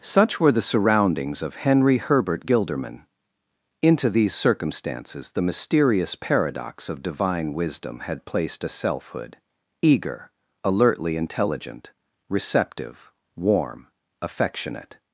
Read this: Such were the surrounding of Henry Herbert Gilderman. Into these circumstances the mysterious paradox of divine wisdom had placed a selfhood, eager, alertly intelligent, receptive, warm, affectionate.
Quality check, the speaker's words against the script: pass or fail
fail